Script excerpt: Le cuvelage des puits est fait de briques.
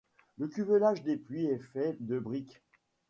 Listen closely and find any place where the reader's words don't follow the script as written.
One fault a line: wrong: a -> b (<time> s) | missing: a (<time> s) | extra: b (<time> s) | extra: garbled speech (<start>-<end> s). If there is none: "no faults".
no faults